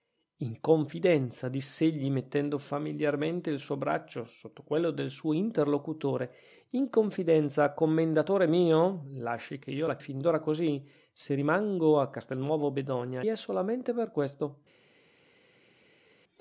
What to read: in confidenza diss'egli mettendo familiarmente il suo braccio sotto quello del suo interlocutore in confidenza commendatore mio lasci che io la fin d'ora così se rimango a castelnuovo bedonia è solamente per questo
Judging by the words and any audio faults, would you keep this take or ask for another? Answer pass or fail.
pass